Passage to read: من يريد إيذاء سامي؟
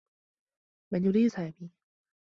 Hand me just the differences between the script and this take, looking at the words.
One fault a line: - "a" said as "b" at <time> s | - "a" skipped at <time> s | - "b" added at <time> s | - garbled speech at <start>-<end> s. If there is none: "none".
- "إيذاء" skipped at 1.3 s